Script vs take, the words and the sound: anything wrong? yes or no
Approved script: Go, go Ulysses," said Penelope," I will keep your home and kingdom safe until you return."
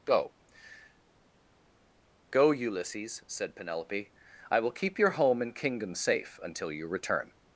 no